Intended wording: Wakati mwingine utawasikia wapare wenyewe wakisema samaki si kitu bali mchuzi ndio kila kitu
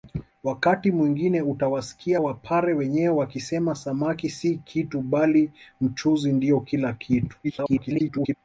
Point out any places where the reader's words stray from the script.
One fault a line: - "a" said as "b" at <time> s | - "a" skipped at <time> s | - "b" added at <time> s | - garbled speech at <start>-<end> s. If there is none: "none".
- garbled speech at 7.4-8.3 s